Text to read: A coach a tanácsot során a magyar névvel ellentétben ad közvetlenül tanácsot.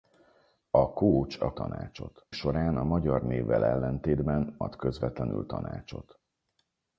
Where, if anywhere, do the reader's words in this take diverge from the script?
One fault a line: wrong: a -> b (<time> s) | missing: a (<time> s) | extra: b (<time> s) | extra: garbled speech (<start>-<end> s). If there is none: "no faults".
no faults